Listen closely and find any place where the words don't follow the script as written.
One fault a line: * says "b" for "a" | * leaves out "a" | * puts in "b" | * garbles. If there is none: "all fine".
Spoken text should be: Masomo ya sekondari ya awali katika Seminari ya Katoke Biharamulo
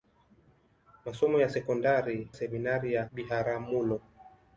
* leaves out "ya awali katika"
* leaves out "Katoke"